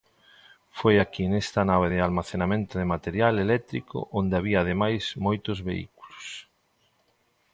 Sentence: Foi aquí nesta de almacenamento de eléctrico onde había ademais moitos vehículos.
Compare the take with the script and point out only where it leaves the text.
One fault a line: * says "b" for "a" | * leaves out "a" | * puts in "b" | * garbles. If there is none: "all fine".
* puts in "nave"
* puts in "material"